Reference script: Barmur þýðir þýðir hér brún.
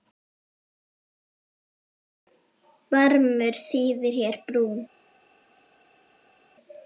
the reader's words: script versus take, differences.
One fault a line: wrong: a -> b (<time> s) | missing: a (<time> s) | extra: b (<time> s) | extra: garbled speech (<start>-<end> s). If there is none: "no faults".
missing: þýðir (4.2 s)